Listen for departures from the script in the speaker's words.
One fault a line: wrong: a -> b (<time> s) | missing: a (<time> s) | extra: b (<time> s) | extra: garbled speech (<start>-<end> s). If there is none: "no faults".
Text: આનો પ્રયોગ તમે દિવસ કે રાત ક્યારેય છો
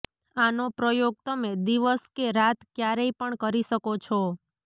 extra: પણ કરી શકો (3.2 s)